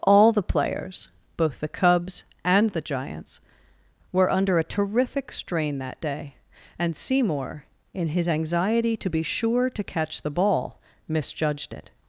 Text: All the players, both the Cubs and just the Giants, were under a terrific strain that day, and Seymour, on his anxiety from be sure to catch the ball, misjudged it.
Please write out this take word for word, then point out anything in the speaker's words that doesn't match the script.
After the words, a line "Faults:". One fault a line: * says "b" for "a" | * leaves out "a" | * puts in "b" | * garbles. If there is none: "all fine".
All the players, both the Cubs and the Giants, were under a terrific strain that day, and Seymour, in his anxiety to be sure to catch the ball, misjudged it.
Faults:
* leaves out "just"
* says "in" for "on"
* says "to" for "from"